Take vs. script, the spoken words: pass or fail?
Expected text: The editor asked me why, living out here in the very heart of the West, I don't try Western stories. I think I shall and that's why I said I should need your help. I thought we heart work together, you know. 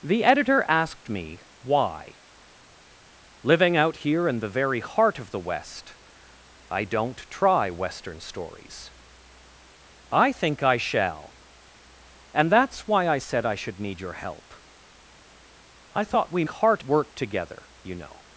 pass